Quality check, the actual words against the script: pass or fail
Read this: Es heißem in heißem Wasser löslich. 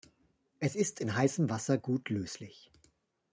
fail